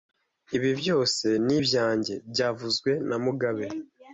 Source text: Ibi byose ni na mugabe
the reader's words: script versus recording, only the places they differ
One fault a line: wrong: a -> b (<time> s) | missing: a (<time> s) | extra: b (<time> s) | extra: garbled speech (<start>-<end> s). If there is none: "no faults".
extra: ibyanjye byavuzwe (1.6 s)